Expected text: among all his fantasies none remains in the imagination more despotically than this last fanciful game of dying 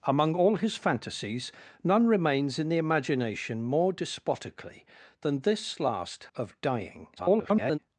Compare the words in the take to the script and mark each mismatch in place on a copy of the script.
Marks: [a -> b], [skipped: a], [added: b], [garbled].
among all his fantasies none remains in the imagination more despotically than this last [skipped: fanciful game] of dying [garbled]